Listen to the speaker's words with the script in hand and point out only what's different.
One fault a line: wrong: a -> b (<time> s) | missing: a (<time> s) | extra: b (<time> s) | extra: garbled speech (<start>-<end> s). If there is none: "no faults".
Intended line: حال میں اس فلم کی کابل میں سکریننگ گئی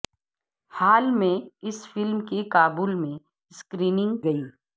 no faults